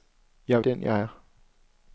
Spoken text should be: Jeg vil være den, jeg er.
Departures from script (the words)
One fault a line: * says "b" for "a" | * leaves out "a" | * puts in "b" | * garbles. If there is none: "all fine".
* leaves out "vil være"